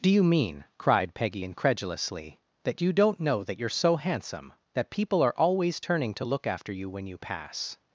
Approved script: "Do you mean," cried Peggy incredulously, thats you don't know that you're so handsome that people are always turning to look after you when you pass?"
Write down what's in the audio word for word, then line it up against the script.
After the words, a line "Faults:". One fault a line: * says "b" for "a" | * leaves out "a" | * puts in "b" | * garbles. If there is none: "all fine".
"Do you mean," cried Peggy incredulously, that you don't know that you're so handsome that people are always turning to look after you when you pass?"
Faults:
* says "that" for "thats"